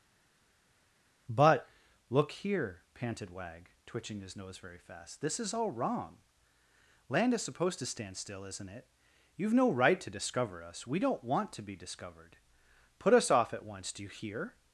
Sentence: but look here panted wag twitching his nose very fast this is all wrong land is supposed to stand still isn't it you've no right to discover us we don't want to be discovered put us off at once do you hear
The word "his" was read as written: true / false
true